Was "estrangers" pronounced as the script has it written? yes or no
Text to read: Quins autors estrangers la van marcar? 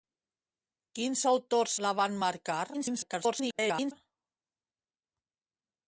no